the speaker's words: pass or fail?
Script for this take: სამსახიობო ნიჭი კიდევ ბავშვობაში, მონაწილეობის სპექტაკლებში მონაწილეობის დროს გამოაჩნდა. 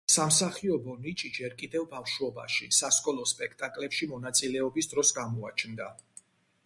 fail